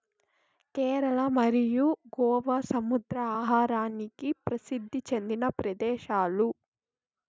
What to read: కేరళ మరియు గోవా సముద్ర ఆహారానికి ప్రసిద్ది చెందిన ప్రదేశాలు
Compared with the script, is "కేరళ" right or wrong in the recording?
right